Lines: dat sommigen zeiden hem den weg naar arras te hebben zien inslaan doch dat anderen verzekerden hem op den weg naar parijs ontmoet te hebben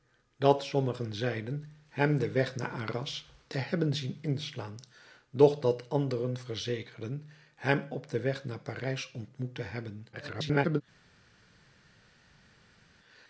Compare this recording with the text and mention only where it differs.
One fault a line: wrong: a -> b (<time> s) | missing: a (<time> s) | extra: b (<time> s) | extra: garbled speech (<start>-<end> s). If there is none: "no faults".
extra: garbled speech (10.1-10.8 s)